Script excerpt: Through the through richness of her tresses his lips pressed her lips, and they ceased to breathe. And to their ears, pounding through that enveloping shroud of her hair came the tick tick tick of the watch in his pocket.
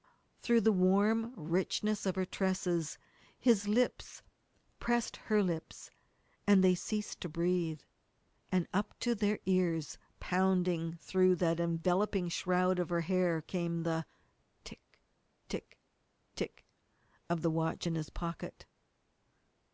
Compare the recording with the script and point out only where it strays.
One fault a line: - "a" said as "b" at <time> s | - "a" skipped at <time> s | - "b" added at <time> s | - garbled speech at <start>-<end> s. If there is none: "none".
- "through" said as "warm" at 0.7 s
- "up" added at 8.7 s